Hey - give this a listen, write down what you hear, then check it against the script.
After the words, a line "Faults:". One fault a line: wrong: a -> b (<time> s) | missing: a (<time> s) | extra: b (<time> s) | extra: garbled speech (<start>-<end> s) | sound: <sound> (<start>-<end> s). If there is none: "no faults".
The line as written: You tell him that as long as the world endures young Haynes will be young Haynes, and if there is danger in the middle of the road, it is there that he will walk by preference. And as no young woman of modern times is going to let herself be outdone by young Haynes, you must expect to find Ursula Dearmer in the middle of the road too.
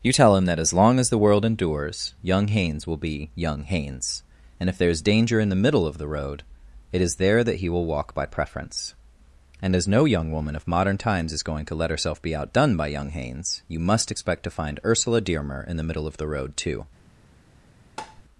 You tell him that as long as the world endures young Haynes will be young Haynes, and if there is danger in the middle of the road, it is there that he will walk by preference. And as no young woman of modern times is going to let herself be outdone by young Haynes, you must expect to find Ursula Dearmer in the middle of the road too.
Faults:
sound: tap (18.0-18.2 s)